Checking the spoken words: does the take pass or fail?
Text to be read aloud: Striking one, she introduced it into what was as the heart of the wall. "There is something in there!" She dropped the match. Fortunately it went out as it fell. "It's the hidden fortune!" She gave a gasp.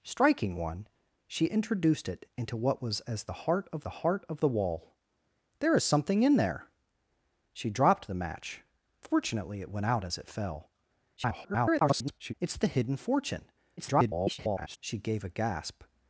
fail